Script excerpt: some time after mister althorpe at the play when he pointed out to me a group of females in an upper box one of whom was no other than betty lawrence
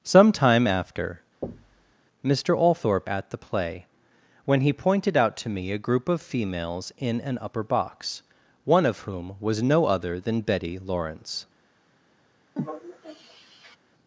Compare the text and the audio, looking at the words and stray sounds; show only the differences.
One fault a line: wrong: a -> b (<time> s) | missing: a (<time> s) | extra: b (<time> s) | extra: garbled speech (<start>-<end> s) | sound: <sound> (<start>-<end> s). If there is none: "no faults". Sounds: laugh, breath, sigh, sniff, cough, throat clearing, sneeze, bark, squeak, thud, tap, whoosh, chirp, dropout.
sound: thud (1.4-2.0 s)
sound: sigh (12.6-13.8 s)